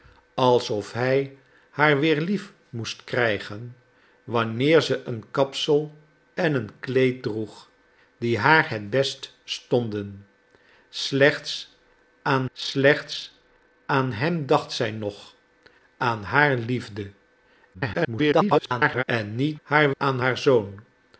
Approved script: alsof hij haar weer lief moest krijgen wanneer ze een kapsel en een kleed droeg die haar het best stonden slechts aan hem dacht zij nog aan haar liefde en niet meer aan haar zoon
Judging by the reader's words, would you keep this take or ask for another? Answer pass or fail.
fail